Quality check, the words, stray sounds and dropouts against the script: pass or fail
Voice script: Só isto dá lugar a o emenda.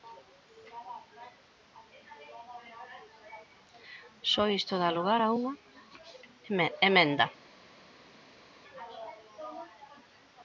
fail